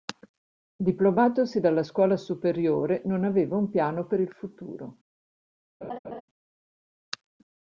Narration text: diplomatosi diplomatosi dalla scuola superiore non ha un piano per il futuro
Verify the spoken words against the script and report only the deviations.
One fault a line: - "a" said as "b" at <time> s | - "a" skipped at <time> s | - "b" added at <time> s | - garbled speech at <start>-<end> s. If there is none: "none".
- "diplomatosi" skipped at 1.6 s
- "ha" said as "aveva" at 3.3 s